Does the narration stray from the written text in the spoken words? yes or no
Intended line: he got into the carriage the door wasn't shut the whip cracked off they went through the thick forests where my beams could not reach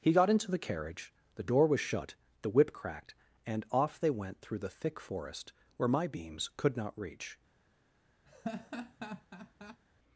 yes